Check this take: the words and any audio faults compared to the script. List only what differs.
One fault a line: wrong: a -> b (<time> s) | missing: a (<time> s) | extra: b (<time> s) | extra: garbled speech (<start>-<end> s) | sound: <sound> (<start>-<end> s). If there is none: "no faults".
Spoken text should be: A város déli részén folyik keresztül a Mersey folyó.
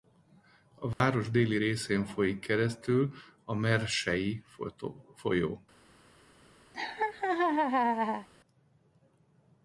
sound: dropout (0.9-1.0 s)
sound: laugh (6.7-8.3 s)